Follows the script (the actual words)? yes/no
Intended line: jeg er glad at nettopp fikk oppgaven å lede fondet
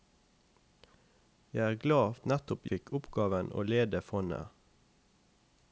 yes